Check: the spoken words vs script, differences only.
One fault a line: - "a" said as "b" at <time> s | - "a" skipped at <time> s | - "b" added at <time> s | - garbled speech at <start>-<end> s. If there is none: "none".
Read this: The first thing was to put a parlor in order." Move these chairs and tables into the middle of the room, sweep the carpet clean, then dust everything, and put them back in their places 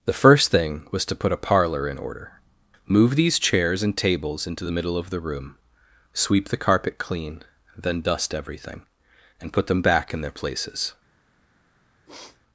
none